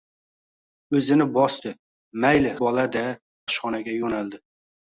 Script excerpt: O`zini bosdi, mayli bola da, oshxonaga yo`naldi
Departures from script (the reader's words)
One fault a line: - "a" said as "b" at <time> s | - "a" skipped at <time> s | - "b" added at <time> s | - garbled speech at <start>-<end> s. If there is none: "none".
none